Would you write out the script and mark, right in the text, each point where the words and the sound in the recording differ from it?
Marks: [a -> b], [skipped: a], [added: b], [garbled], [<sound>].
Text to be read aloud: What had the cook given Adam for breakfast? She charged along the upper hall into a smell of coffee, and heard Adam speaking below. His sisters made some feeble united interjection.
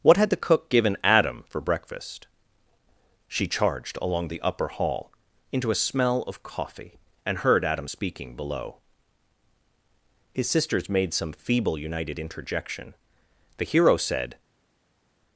What had the cook given Adam for breakfast? She charged along the upper hall into a smell of coffee, and heard Adam speaking below. His sisters made some feeble united interjection. [added: The hero said]